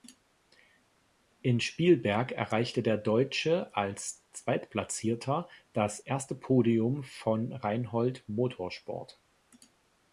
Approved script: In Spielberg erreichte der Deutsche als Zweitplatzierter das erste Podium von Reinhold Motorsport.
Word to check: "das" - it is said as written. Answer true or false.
true